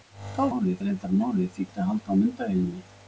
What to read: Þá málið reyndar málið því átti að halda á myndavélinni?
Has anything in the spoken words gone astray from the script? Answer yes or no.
no